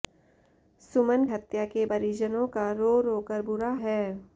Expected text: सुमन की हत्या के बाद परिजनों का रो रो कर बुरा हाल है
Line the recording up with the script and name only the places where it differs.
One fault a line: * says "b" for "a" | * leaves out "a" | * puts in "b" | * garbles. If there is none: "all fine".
* leaves out "की"
* leaves out "बाद"
* leaves out "हाल"